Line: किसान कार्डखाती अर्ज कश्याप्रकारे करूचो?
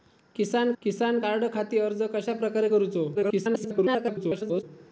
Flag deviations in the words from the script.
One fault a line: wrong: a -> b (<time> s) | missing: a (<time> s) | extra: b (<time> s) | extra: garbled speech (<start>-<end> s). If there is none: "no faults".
extra: किसान (0.8 s)
extra: garbled speech (3.1-4.6 s)